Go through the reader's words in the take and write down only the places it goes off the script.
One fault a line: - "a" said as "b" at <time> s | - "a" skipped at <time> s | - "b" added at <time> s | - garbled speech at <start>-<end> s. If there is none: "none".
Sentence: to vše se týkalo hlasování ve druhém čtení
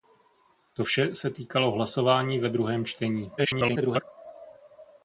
- garbled speech at 3.4-4.0 s